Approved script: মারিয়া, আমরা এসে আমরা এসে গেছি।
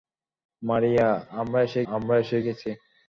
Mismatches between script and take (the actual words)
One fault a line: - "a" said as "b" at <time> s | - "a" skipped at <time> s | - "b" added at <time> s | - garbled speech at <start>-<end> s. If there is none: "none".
none